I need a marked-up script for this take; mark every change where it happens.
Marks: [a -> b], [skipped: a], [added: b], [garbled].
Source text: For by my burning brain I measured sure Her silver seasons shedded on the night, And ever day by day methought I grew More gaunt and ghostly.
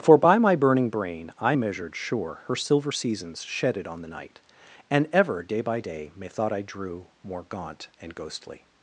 For by my burning brain I measured sure Her silver seasons shedded on the night, And ever day by day methought I [grew -> drew] More gaunt and ghostly.